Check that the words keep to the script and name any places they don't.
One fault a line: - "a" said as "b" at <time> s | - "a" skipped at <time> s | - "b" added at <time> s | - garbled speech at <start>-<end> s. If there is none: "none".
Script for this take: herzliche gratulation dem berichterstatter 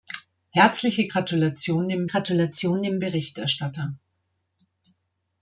- "gratulation dem" added at 2.0 s